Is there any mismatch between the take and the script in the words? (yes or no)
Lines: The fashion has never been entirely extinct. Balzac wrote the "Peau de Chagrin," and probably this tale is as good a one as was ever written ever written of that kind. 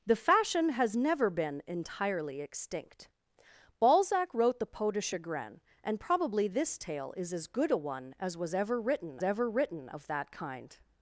no